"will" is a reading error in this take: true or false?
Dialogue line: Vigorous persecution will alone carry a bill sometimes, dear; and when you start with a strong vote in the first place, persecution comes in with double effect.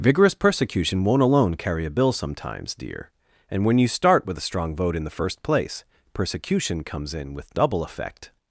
true